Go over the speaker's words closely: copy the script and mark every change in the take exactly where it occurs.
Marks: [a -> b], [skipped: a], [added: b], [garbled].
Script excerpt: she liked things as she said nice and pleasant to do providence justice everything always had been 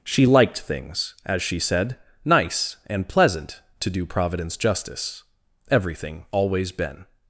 she liked things as she said nice and pleasant to do providence justice everything always [skipped: had] been